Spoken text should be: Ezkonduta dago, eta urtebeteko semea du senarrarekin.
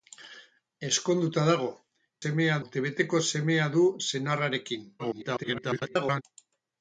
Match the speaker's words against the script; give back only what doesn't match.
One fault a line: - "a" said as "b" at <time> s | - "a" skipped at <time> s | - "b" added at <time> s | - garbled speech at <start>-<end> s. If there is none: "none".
- "eta" said as "semea" at 2.2 s
- garbled speech at 5.0-6.2 s